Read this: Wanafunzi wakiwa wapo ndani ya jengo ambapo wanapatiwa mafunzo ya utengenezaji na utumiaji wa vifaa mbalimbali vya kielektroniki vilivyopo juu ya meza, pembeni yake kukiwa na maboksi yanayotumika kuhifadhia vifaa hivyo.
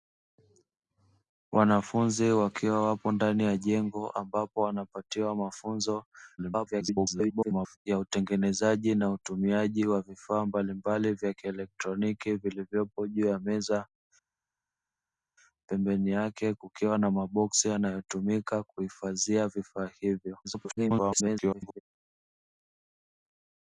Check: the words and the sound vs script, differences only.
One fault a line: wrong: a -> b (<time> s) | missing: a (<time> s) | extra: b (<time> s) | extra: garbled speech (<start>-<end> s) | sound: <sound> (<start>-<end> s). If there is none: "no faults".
extra: garbled speech (6.4-7.8 s)
extra: garbled speech (20.4-21.8 s)